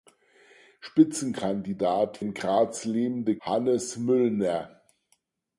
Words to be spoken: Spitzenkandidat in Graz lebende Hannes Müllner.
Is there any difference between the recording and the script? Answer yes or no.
no